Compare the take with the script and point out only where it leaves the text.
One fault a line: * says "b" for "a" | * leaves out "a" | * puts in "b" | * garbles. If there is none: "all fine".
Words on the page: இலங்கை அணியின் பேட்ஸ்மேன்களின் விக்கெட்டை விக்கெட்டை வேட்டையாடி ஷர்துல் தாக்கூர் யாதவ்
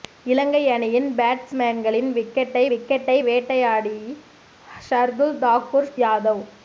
all fine